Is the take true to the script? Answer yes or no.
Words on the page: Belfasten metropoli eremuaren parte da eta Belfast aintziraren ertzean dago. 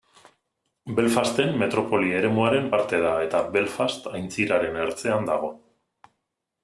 yes